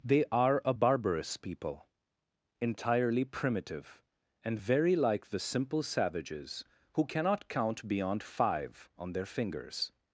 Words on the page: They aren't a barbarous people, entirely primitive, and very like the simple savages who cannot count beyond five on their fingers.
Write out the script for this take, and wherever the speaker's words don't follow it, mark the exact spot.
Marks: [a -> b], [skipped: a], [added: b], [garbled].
They [aren't -> are] a barbarous people, entirely primitive, and very like the simple savages who cannot count beyond five on their fingers.